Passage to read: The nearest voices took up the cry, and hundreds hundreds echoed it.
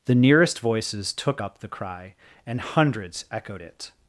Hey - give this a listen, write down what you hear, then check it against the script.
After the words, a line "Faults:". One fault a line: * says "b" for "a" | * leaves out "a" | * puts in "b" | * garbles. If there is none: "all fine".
The nearest voices took up the cry, and hundreds echoed it.
Faults:
* leaves out "hundreds"